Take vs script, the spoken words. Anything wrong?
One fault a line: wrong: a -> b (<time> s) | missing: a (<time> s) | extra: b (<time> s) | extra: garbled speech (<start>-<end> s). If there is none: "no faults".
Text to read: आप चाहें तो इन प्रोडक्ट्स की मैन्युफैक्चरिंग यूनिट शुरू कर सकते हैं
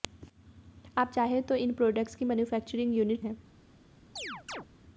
missing: शुरू कर सकते (3.2 s)